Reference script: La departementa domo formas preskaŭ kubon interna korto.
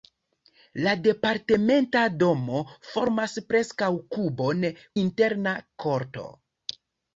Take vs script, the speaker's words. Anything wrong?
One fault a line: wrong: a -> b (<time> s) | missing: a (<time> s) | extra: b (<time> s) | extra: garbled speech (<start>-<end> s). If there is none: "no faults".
no faults